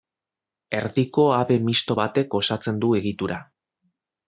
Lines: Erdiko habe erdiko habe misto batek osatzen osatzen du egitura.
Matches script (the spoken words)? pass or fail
fail